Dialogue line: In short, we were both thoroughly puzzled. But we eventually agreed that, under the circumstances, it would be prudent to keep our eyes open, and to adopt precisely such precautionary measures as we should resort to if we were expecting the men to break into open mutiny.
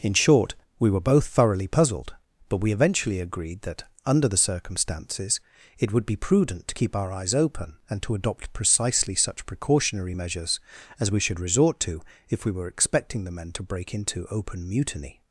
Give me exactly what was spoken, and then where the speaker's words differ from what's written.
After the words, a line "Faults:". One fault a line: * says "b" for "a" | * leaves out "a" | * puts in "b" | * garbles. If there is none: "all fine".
In short, we were both thoroughly puzzled. But we eventually agreed that, under the circumstances, it would be prudent to keep our eyes open, and to adopt precisely such precautionary measures as we should resort to if we were expecting the men to break into open mutiny.
Faults:
all fine